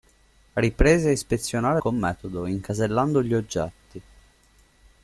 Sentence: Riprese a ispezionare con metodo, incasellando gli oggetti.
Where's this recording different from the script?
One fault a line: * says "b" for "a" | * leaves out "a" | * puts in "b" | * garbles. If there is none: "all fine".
all fine